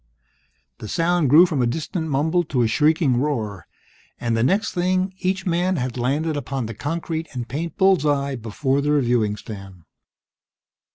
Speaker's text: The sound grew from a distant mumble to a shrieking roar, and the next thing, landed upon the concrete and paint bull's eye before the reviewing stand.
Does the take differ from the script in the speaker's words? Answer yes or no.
yes